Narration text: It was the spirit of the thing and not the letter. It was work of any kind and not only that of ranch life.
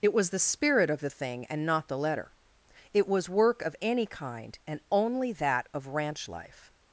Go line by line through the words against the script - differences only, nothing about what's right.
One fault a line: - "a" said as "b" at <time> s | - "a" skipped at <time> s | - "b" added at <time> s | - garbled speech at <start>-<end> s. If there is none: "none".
- "not" skipped at 4.8 s